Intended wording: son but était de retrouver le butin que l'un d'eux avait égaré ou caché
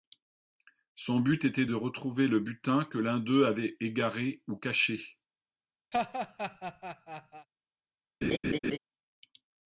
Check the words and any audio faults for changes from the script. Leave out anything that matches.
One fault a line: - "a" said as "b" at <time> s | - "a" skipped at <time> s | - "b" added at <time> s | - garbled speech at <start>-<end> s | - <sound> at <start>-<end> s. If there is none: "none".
- laugh at 5.9-7.5 s
- laugh at 8.2-8.8 s